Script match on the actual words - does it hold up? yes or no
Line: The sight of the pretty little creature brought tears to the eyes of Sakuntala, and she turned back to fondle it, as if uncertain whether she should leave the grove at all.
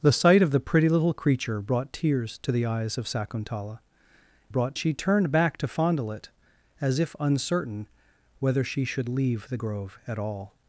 no